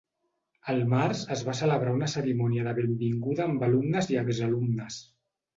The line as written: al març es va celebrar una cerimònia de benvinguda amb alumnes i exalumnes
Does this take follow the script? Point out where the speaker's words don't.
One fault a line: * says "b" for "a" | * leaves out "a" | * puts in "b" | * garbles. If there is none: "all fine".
all fine